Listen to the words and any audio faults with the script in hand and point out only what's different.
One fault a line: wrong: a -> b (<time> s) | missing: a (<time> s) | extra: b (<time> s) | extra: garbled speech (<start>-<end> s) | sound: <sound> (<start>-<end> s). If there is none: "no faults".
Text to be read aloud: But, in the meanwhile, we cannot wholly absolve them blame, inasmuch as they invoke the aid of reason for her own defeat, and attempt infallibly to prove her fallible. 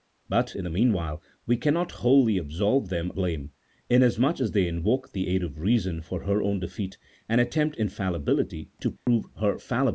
sound: dropout (9.0-9.1 s)